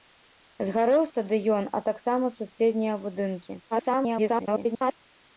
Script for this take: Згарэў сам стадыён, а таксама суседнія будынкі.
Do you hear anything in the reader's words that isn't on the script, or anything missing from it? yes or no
yes